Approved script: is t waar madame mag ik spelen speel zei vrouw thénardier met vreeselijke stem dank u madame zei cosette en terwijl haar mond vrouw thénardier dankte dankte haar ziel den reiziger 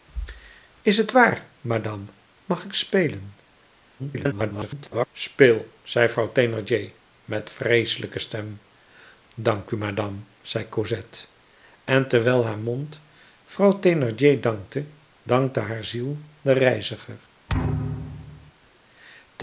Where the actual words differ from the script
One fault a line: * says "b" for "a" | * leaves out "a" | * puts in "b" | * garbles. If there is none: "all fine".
* garbles